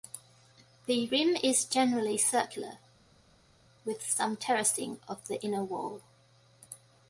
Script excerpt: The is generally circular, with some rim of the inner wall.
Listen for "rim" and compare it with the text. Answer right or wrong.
wrong